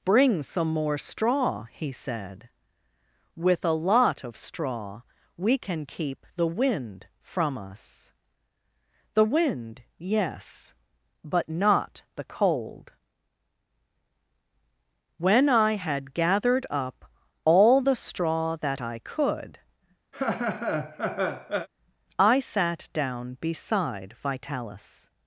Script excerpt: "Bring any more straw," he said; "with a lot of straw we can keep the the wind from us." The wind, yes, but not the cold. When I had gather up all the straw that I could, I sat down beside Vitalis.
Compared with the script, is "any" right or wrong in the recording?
wrong